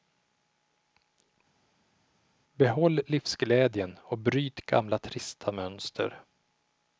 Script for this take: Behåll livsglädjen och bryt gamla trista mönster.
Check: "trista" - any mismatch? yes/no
no